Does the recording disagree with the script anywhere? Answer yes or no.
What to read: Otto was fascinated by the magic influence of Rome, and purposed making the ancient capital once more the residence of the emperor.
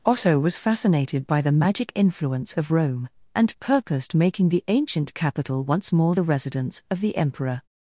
no